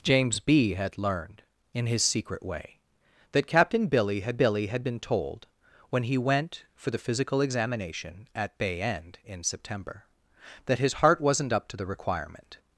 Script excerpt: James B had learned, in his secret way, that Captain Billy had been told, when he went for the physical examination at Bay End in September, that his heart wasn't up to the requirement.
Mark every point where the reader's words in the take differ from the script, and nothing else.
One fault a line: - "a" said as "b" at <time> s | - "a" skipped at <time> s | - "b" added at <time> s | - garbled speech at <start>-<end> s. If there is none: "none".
- "Billy had" added at 4.3 s